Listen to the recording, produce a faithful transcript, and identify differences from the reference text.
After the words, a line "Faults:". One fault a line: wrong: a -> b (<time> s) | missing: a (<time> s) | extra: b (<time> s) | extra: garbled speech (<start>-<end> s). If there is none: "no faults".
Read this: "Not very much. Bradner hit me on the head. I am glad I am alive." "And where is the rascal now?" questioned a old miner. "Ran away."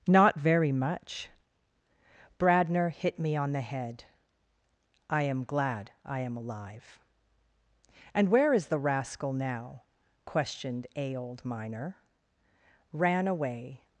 "Not very much. Bradner hit me on the head. I am glad I am alive." "And where is the rascal now?" questioned a old miner. "Ran away."
Faults:
no faults